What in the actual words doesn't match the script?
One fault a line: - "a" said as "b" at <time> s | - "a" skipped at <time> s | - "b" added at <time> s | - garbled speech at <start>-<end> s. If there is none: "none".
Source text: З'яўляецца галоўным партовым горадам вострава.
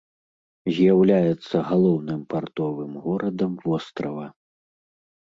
none